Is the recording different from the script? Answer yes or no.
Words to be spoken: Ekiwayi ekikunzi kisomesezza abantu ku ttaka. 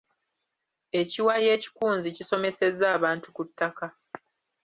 no